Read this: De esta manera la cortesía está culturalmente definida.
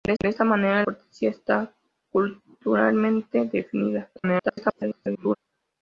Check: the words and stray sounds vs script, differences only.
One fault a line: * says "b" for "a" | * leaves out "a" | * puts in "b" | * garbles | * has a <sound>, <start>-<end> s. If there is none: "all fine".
* puts in "de"
* leaves out "la"
* garbles